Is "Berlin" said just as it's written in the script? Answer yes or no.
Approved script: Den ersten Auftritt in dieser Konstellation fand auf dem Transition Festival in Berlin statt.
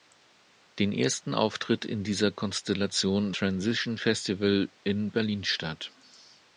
yes